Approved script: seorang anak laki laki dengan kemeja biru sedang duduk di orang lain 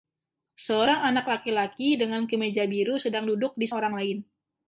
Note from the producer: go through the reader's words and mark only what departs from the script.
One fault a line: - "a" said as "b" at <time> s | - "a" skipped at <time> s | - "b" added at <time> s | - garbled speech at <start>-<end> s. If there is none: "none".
none